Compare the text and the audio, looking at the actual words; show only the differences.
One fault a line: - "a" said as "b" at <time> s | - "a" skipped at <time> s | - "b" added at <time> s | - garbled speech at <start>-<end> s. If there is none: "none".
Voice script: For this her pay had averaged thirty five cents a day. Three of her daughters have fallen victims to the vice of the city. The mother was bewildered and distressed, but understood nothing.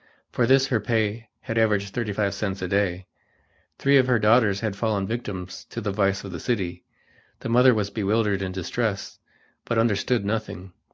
- "have" said as "had" at 4.6 s